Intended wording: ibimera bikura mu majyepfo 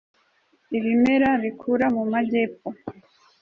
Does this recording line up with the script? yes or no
yes